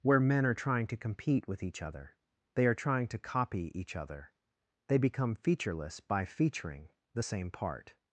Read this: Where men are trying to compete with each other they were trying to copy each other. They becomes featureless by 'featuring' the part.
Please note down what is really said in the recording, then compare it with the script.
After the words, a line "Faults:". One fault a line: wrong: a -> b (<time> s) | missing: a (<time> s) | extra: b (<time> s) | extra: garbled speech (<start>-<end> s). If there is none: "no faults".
Where men are trying to compete with each other they are trying to copy each other. They become featureless by 'featuring' the same part.
Faults:
wrong: were -> are (2.6 s)
wrong: becomes -> become (5.0 s)
extra: same (7.2 s)